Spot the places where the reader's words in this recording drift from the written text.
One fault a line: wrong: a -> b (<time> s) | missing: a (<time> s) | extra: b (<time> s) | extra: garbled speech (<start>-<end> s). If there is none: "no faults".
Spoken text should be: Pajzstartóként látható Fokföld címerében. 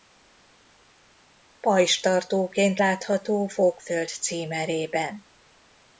no faults